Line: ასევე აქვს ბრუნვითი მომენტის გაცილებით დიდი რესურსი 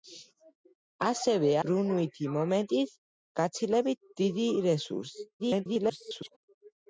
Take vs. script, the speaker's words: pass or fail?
fail